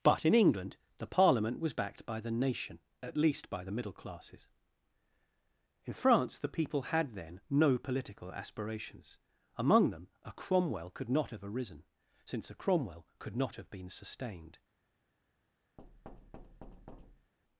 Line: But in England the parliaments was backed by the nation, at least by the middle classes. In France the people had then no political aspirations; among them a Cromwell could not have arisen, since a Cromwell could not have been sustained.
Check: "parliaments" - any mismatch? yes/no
yes